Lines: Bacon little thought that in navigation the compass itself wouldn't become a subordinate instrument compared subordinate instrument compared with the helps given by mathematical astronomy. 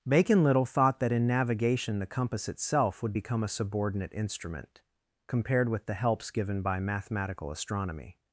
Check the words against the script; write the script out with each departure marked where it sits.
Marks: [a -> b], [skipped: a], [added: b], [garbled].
Bacon little thought that in navigation the compass itself [wouldn't -> would] become a subordinate instrument compared [skipped: subordinate instrument compared] with the helps given by mathematical astronomy.